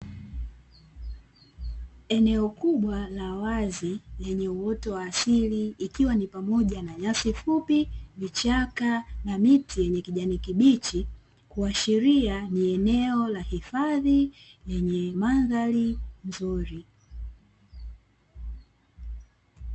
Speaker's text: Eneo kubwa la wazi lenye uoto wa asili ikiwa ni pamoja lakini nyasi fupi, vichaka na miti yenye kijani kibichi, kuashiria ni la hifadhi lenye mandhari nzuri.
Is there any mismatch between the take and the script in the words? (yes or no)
yes